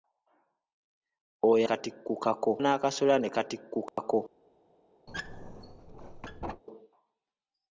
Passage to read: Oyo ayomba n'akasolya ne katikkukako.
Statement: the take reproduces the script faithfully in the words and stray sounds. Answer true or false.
false